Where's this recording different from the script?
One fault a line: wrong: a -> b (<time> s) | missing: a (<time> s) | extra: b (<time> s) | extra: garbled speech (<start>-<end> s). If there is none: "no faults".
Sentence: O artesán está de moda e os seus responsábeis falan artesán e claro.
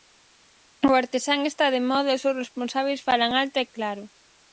wrong: artesán -> alto (3.4 s)